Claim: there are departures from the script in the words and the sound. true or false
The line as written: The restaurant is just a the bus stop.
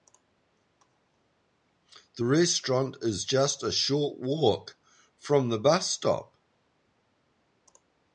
true